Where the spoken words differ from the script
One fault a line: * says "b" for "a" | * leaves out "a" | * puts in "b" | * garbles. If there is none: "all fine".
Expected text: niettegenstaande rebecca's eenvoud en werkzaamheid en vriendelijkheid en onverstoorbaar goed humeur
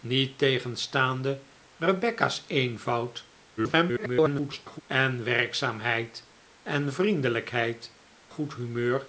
* garbles
* leaves out "en onverstoorbaar"